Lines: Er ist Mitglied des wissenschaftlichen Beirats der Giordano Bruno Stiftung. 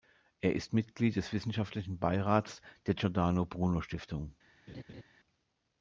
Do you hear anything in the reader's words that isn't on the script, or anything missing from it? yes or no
no